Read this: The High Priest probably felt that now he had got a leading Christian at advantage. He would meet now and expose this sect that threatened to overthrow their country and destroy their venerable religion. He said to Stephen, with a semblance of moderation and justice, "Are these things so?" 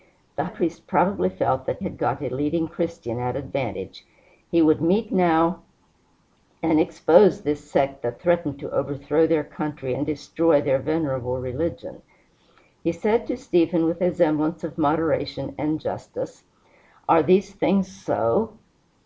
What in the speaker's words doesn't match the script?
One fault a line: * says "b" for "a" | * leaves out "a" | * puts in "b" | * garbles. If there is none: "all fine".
* leaves out "High"
* leaves out "now he"